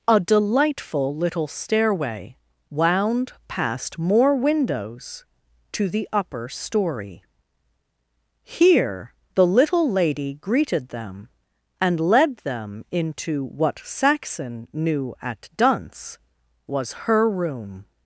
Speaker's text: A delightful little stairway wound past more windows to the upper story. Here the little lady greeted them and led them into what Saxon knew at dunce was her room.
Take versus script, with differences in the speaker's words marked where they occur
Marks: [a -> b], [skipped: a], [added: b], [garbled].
A delightful little stairway wound past more windows to the upper story. Here the little lady greeted them and led them into what Saxon knew at dunce was her room.